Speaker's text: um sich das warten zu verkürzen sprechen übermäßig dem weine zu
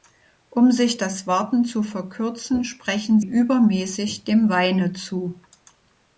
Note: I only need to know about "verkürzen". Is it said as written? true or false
true